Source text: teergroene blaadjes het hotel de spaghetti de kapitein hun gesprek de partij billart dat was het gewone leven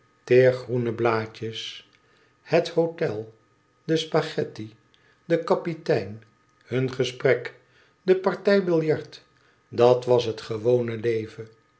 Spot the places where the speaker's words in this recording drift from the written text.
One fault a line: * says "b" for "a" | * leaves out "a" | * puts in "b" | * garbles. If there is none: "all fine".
all fine